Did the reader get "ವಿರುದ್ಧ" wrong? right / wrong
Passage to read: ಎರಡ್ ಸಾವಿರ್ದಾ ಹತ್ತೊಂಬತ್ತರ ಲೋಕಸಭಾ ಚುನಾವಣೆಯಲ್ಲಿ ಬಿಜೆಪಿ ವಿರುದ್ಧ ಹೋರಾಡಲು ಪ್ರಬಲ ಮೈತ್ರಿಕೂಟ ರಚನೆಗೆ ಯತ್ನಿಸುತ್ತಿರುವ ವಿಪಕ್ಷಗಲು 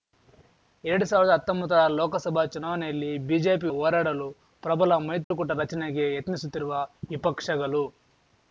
wrong